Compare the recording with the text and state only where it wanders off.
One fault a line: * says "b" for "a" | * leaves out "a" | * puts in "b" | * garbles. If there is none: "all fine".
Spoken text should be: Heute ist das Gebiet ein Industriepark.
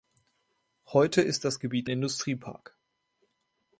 * leaves out "ein"